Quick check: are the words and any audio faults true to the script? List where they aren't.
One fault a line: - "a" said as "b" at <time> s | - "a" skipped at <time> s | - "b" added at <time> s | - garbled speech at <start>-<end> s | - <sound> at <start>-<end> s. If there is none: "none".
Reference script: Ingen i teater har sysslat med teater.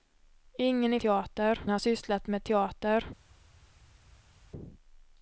none